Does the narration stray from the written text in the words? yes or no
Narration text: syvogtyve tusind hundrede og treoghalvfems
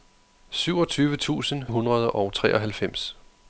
no